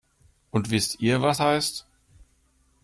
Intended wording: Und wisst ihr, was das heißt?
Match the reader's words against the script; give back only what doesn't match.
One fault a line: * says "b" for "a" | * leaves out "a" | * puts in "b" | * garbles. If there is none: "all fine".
* leaves out "das"